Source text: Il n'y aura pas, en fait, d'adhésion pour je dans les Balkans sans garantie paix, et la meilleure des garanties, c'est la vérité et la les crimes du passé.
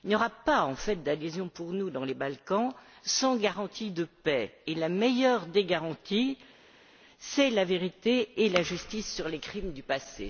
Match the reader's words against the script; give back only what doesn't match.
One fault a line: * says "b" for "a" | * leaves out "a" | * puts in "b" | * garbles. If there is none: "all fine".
* says "nous" for "je"
* puts in "de"
* puts in "justice sur"